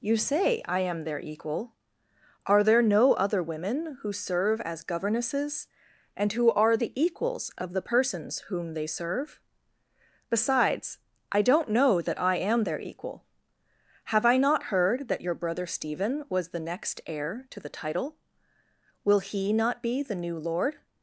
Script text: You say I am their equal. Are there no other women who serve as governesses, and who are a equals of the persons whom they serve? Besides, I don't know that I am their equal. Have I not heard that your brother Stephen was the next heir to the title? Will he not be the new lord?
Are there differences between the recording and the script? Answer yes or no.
yes